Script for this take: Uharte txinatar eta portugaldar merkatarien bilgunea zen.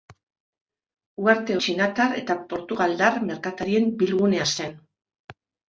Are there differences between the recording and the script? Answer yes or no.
no